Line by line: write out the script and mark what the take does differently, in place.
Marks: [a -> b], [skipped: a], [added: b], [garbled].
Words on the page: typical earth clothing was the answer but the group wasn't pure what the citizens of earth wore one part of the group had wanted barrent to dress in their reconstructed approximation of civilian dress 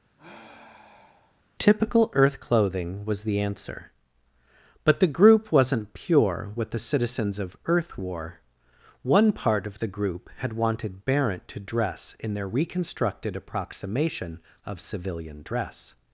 typical earth clothing was the answer but the group wasn't pure what the citizens of earth wore one part of the group had wanted barrent to dress in their reconstructed approximation of civilian dress